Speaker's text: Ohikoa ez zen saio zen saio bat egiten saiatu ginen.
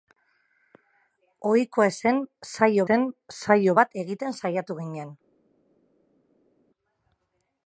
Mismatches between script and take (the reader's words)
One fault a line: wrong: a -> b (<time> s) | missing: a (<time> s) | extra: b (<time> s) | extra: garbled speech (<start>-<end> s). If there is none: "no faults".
no faults